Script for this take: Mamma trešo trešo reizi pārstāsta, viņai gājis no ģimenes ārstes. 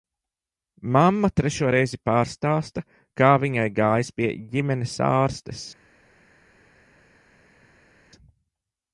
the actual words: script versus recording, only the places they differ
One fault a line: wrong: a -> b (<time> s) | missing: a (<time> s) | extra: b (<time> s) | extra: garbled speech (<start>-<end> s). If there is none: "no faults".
missing: trešo (1.7 s)
extra: kā (3.2 s)
wrong: no -> pie (4.2 s)